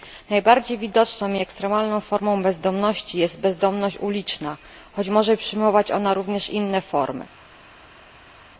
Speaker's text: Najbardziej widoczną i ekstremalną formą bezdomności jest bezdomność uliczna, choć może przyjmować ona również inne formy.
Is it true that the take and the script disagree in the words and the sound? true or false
false